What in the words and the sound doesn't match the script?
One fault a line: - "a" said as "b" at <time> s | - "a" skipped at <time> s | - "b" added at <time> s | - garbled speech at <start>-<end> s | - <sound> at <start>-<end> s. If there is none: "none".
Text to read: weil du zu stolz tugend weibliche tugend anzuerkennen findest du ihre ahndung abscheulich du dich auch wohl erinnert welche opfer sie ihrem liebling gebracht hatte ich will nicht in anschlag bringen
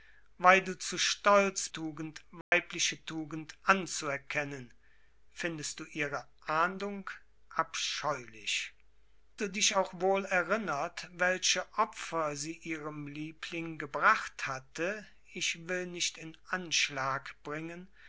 - dropout at 2.4-2.5 s